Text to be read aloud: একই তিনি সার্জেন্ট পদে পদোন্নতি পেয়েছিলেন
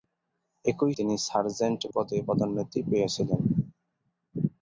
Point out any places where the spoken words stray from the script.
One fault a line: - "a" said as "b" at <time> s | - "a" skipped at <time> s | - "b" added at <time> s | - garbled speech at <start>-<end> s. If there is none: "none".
none